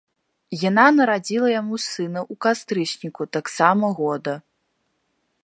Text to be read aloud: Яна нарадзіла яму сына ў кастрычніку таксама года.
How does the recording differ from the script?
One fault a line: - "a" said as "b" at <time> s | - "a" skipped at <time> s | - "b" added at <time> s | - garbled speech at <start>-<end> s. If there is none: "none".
none